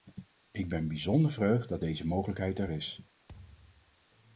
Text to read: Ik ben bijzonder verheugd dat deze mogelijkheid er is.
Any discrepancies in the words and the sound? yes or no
yes